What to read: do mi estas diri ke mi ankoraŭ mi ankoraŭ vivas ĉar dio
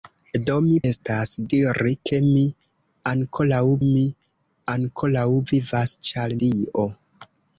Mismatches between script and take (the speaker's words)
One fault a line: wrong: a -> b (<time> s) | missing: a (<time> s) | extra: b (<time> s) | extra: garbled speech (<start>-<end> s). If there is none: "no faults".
no faults